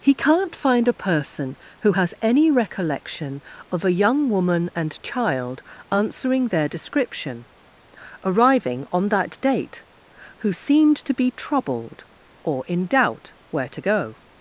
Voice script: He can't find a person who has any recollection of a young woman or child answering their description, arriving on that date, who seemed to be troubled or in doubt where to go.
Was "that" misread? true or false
false